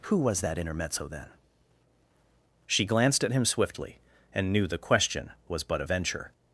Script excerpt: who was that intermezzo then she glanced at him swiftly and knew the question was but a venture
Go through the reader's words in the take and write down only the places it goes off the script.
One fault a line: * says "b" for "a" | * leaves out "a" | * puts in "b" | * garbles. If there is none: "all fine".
all fine